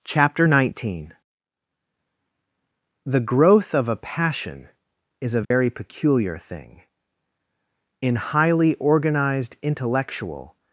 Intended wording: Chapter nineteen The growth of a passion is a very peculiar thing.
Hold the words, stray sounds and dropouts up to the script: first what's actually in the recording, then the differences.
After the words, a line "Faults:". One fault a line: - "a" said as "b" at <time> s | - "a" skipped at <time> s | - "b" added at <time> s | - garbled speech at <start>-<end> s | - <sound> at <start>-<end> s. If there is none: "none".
Chapter nineteen The growth of a passion is a very peculiar thing. In highly organized intellectual
Faults:
- dropout at 5.4-5.5 s
- "In highly organized intellectual" added at 8.0 s